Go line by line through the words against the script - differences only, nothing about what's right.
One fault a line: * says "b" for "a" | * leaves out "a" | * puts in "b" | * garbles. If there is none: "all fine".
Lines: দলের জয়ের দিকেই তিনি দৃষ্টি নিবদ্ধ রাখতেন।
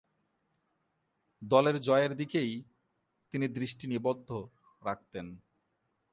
all fine